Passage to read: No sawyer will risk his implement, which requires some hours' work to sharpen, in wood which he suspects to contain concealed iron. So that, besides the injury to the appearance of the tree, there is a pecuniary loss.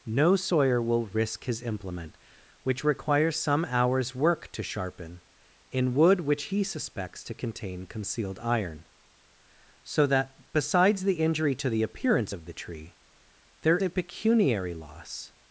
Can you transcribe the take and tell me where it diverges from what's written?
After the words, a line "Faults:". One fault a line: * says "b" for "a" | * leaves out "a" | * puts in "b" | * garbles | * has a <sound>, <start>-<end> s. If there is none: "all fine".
No sawyer will risk his implement, which requires some hours' work to sharpen, in wood which he suspects to contain concealed iron. So that, besides the injury to the appearance of the tree, there a pecuniary loss.
Faults:
* leaves out "is"